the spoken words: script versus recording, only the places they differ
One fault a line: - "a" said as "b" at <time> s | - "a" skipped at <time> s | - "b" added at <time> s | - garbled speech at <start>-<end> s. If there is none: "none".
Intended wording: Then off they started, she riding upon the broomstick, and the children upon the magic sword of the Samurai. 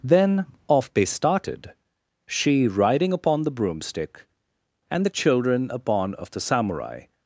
- "the magic sword" skipped at 6.1 s